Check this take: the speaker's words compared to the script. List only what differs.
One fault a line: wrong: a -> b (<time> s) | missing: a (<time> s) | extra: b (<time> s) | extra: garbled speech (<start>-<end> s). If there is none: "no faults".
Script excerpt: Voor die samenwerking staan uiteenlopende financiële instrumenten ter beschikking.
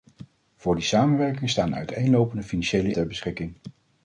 missing: instrumenten (2.9 s)